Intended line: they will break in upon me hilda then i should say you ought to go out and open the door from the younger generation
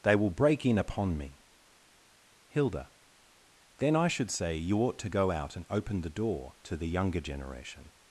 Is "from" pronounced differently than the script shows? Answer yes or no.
yes